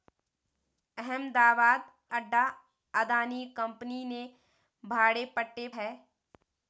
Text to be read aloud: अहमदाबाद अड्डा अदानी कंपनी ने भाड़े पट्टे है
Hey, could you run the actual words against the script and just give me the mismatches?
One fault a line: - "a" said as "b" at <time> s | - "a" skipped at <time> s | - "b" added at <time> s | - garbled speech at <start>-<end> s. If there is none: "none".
none